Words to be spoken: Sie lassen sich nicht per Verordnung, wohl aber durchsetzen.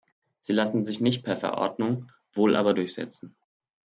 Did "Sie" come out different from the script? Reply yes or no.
no